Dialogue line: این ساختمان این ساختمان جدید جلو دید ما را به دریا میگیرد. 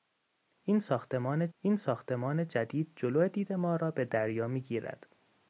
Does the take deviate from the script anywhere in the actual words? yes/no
no